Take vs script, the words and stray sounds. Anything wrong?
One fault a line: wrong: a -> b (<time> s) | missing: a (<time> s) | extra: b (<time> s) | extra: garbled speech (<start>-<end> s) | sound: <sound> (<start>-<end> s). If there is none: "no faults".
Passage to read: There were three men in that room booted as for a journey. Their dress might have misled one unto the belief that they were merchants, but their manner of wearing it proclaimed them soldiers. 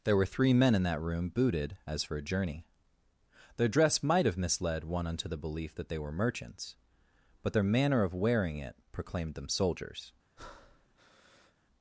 sound: breath (10.4-11.5 s)